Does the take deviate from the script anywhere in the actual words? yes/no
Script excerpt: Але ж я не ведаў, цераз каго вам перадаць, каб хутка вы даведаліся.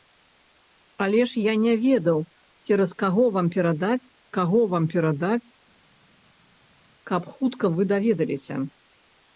yes